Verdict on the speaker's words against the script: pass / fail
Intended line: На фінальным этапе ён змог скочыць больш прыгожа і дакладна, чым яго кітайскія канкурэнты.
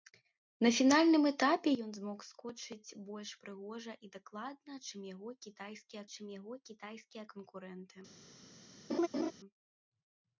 fail